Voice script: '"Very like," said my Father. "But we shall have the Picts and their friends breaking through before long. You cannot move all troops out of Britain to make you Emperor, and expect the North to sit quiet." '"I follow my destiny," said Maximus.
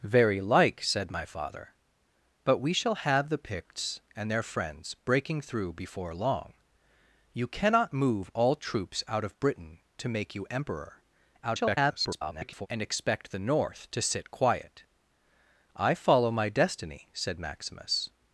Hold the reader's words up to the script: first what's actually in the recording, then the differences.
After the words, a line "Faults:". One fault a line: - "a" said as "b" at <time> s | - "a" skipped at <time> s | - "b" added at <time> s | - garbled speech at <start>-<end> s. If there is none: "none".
'"Very like," said my Father. "But we shall have the Picts and their friends breaking through before long. You cannot move all troops out of Britain to make you Emperor, [garbled] and expect the North to sit quiet." '"I follow my destiny," said Maximus.
Faults:
- garbled speech at 11.4-12.7 s